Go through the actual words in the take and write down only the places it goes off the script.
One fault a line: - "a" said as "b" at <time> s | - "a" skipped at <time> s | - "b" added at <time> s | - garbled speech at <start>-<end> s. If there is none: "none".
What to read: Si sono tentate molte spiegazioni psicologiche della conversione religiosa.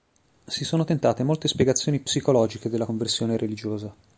none